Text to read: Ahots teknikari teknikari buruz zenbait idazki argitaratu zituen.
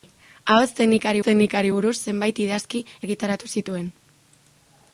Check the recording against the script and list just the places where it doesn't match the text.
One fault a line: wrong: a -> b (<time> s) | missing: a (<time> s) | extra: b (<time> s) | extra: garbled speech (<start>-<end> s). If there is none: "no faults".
no faults